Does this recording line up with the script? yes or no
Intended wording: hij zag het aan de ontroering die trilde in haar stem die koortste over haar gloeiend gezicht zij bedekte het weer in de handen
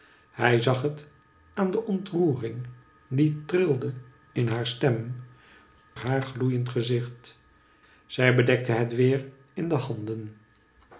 no